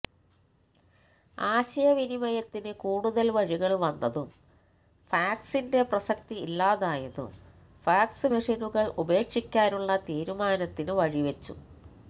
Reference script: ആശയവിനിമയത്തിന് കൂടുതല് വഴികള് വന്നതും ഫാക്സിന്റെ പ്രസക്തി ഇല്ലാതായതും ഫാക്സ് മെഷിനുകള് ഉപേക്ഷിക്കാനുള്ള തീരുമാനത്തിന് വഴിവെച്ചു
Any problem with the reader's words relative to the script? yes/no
no